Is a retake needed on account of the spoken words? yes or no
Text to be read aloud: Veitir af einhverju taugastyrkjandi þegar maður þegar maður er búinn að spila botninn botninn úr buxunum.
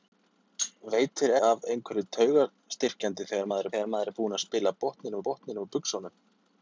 no